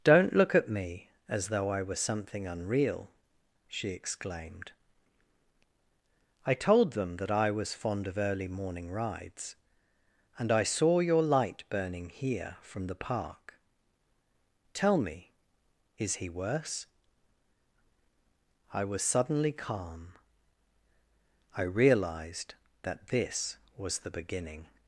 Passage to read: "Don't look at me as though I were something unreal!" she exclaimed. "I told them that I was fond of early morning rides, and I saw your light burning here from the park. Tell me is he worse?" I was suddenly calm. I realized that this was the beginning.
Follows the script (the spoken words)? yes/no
yes